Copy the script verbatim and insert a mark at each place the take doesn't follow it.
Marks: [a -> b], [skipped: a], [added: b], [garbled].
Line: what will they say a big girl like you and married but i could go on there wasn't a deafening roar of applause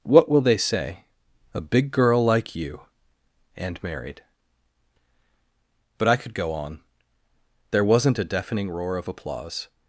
what will they say a big girl like you and married but i could go on there wasn't a deafening roar of applause